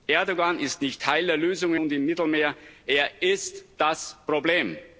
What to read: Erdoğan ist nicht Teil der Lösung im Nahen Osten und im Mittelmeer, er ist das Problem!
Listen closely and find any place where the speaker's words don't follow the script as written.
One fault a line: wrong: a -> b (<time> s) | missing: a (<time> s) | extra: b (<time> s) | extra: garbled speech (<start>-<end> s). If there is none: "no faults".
missing: im Nahen Osten (1.8 s)